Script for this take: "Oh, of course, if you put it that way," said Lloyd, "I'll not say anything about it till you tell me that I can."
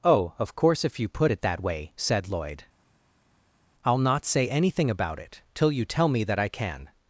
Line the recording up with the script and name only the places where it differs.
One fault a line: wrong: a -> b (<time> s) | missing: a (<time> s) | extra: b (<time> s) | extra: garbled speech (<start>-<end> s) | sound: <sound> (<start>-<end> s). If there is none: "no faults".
no faults